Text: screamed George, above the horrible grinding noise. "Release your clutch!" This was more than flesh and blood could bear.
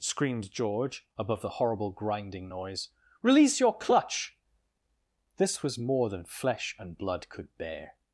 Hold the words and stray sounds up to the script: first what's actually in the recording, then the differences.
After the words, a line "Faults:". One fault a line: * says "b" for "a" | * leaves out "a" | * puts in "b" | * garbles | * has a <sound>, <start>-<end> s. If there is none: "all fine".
screamed George, above the horrible grinding noise. "Release your clutch!" This was more than flesh and blood could bear.
Faults:
all fine